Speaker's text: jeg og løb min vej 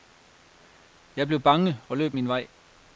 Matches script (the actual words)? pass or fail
fail